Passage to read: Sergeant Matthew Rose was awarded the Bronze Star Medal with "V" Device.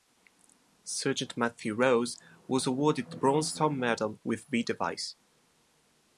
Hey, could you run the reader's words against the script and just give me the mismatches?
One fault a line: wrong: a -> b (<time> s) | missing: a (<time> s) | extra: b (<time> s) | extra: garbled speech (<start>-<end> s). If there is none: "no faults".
no faults